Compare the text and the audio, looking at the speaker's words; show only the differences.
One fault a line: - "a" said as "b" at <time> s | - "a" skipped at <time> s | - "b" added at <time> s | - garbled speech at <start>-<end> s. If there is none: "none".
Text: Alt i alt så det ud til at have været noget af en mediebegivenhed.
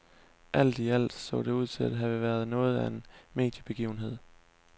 none